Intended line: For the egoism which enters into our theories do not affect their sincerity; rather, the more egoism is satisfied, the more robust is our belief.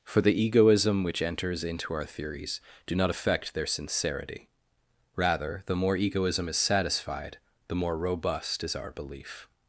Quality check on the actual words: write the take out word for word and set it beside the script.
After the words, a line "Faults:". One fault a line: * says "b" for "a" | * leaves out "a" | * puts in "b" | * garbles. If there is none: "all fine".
For the egoism which enters into our theories do not affect their sincerity; rather, the more egoism is satisfied, the more robust is our belief.
Faults:
all fine